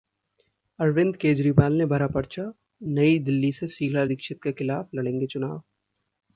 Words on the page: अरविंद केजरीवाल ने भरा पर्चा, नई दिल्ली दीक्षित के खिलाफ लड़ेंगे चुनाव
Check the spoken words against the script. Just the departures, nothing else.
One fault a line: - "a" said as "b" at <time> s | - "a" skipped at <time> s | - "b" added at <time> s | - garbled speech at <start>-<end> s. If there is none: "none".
- "से शीला" added at 3.5 s